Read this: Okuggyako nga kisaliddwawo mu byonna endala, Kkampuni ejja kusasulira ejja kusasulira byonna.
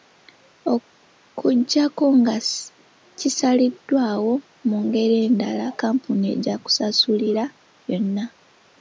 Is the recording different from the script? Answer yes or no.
yes